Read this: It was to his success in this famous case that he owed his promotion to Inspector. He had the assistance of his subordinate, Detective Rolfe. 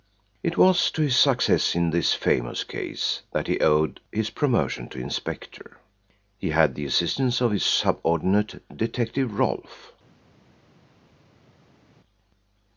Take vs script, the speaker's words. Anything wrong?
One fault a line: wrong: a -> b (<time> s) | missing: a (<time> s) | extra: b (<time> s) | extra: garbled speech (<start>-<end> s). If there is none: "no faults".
no faults